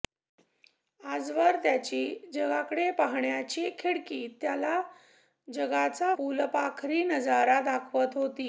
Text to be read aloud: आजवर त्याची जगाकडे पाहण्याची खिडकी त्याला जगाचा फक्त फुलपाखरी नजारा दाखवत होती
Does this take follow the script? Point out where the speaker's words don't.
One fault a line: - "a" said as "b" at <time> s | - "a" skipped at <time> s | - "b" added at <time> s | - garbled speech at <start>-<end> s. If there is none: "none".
- "फक्त" skipped at 6.1 s